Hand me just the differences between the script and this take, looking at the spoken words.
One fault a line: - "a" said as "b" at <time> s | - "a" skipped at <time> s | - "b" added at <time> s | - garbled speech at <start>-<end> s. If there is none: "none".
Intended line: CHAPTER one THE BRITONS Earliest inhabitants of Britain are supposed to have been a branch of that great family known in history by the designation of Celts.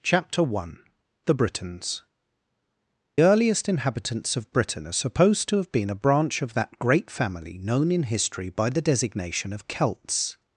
none